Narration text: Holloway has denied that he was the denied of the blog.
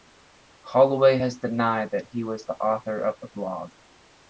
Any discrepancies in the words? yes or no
yes